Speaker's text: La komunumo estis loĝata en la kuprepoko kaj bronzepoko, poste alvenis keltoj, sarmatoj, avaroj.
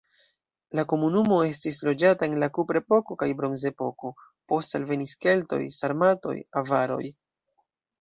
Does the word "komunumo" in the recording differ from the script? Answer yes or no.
no